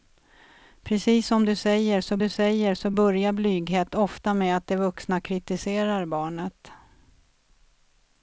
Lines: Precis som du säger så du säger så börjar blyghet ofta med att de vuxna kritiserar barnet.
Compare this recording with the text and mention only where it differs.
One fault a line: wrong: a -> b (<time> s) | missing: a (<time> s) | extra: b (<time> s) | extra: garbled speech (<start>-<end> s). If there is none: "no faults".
no faults